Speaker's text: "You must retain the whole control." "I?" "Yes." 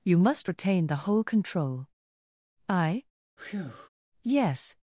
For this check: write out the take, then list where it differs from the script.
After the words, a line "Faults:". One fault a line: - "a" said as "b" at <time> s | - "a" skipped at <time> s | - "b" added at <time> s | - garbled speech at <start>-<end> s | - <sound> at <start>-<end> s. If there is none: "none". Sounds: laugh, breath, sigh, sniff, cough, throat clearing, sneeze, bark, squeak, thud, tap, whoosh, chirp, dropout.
"You must retain the whole control." "I?" "Yes."
Faults:
- breath at 3.4-3.9 s